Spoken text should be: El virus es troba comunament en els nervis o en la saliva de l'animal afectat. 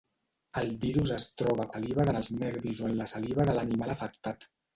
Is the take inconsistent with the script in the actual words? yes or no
yes